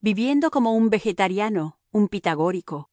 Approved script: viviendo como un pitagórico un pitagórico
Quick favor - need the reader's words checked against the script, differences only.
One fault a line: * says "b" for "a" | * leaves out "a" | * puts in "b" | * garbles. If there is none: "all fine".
* says "vegetariano" for "pitagórico"